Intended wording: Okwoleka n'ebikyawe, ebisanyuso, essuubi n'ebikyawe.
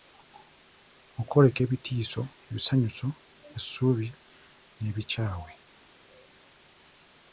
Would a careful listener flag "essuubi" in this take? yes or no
no